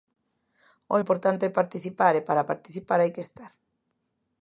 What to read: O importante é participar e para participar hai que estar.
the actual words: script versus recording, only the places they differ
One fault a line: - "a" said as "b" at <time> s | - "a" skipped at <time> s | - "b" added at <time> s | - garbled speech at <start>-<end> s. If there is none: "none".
none